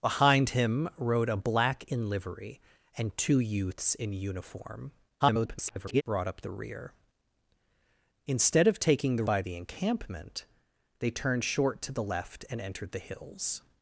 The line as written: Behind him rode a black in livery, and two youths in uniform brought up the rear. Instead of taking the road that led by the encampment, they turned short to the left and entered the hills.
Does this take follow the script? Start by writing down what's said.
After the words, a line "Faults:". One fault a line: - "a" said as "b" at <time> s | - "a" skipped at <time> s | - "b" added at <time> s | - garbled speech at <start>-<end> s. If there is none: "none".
Behind him rode a black in livery, and two youths in uniform [garbled] brought up the rear. Instead of taking the by the encampment, they turned short to the left and entered the hills.
Faults:
- garbled speech at 5.2-6.0 s
- "road that led" skipped at 9.2 s